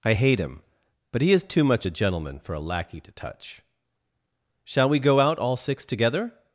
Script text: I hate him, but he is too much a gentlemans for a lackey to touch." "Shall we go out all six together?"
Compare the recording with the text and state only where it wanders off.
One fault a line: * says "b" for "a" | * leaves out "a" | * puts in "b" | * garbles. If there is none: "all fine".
* says "gentleman" for "gentlemans"